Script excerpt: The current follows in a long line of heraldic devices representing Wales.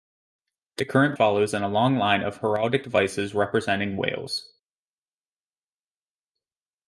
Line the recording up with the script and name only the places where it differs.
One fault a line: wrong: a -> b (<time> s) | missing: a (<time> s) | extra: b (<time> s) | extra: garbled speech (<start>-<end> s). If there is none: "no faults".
no faults